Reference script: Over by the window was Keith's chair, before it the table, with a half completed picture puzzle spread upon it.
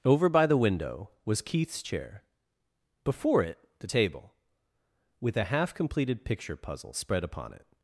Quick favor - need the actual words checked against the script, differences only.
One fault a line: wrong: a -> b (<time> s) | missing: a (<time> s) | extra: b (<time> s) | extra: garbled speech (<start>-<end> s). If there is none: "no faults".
no faults